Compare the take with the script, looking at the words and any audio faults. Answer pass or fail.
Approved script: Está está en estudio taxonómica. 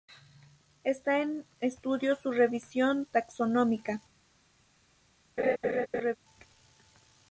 fail